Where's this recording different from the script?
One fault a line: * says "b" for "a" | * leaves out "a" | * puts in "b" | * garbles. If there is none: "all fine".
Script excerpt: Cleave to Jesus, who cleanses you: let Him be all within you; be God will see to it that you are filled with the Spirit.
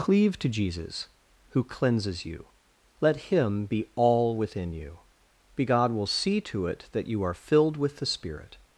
all fine